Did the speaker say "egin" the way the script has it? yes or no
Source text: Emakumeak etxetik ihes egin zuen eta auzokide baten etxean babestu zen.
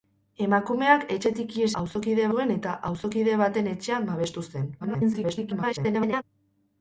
no